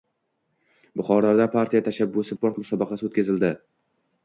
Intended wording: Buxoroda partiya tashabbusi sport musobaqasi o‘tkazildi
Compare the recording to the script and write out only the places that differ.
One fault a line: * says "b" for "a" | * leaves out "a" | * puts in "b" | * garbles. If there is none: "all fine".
all fine